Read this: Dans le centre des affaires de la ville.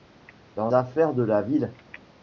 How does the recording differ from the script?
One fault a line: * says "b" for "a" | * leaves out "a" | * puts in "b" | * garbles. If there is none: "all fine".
* leaves out "le centre des"